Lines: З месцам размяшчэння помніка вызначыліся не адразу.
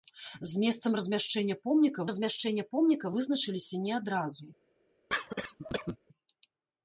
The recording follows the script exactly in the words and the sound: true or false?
false